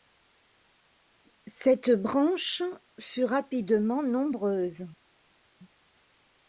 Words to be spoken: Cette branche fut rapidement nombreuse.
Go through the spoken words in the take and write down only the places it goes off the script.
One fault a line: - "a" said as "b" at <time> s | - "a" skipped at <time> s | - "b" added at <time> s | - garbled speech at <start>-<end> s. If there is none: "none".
none